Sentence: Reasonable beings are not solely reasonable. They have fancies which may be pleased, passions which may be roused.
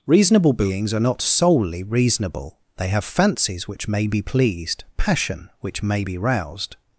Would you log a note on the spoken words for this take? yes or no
yes